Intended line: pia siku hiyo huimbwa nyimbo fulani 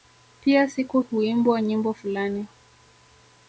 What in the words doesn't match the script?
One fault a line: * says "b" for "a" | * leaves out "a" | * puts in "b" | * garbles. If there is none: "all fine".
* leaves out "hiyo"